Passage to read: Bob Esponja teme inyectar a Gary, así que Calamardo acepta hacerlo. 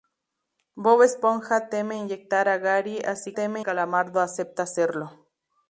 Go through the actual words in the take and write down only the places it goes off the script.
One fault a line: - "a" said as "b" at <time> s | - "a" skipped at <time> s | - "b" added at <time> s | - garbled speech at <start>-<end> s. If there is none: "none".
- "que" said as "teme" at 3.3 s